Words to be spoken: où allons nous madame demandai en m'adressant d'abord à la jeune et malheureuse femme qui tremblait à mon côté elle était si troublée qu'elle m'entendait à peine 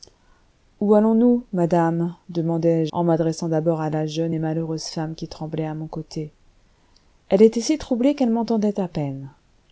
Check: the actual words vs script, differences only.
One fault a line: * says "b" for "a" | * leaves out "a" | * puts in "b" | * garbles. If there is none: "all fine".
all fine